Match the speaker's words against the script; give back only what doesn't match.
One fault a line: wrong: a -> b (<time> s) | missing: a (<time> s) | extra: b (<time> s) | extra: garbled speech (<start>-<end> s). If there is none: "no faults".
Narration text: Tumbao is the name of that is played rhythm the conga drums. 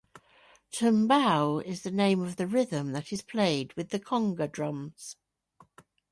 extra: the rhythm (2.4 s)
wrong: rhythm -> with (3.7 s)